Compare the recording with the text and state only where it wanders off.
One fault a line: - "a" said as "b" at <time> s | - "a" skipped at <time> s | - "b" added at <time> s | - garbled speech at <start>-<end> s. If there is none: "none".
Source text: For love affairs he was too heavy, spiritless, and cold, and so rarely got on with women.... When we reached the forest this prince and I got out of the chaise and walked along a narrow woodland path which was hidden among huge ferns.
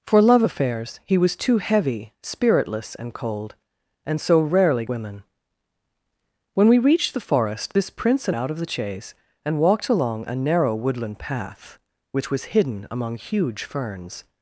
- "got on with" skipped at 4.8 s
- "I got" skipped at 8.4 s